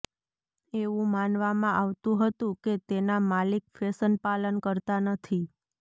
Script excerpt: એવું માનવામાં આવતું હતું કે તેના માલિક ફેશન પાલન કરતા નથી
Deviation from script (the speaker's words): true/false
false